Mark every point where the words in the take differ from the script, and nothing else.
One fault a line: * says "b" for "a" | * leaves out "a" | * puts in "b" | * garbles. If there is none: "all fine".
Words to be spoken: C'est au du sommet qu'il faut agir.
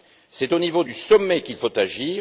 * puts in "niveau"